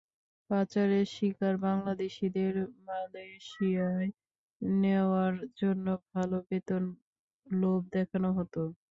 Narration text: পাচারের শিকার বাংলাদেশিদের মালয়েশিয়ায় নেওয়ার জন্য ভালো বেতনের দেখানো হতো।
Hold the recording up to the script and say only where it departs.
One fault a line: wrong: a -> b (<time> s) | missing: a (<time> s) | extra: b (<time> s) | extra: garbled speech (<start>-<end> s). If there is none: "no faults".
extra: লোভ (7.5 s)